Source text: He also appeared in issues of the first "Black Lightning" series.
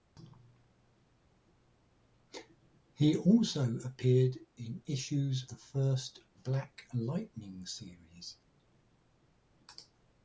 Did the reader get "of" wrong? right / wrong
wrong